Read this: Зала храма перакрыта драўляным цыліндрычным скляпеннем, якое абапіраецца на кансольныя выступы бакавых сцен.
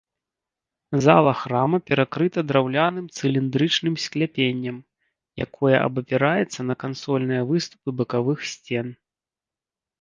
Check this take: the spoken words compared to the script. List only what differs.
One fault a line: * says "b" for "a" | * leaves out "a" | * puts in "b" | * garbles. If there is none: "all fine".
all fine